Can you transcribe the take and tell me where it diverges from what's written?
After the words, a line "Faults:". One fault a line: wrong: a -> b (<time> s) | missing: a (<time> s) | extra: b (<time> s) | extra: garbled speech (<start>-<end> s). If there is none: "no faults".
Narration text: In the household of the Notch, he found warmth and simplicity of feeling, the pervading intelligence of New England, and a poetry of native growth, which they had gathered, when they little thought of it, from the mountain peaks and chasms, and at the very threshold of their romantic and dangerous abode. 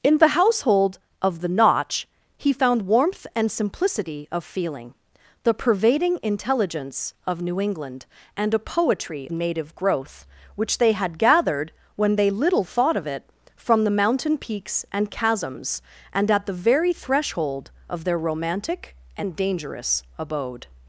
In the household of the Notch, he found warmth and simplicity of feeling, the pervading intelligence of New England, and a poetry native growth, which they had gathered, when they little thought of it, from the mountain peaks and chasms, and at the very threshold of their romantic and dangerous abode.
Faults:
missing: of (9.3 s)